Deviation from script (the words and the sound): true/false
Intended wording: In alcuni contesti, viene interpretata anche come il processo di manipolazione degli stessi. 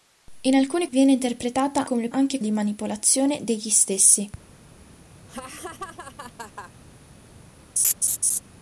true